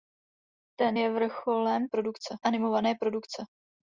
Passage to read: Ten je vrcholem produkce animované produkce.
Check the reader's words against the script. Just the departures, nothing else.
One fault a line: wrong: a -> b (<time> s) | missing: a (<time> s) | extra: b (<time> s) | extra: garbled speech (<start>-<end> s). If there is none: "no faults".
no faults